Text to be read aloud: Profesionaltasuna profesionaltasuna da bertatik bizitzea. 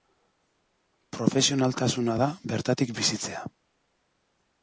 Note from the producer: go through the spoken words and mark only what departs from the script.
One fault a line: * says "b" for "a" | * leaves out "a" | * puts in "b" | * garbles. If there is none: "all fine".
* leaves out "profesionaltasuna"